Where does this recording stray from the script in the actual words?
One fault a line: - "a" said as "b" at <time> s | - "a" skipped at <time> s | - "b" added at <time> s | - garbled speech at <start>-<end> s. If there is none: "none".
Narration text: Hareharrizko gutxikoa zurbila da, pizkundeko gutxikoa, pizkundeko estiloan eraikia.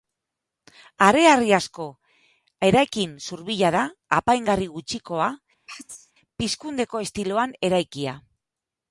- "gutxikoa" said as "eraikin" at 2.7 s
- "pizkundeko" said as "apaingarri" at 4.2 s